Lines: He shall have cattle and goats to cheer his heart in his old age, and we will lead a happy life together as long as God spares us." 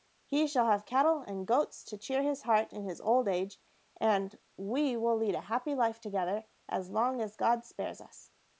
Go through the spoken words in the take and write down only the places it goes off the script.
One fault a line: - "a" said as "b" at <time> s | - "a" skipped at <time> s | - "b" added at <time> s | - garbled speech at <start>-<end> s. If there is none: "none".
none